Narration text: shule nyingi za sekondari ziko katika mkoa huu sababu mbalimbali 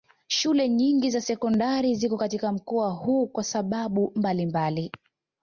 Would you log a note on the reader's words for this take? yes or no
yes